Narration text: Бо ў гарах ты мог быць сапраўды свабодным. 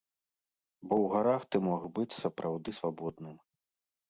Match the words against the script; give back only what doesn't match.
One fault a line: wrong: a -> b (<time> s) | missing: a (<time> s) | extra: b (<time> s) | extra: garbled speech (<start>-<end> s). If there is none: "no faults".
no faults